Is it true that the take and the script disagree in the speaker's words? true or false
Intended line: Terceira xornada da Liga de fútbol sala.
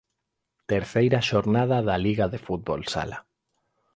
false